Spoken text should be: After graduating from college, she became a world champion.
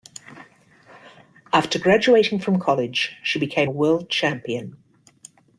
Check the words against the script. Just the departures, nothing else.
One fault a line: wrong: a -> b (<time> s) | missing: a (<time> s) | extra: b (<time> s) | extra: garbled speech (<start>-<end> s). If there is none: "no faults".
no faults